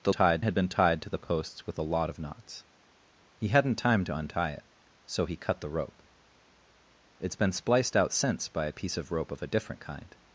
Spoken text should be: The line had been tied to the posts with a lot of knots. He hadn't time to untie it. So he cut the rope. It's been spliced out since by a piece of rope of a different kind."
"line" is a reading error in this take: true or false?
true